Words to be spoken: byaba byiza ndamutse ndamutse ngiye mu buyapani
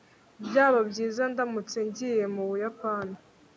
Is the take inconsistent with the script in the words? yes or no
yes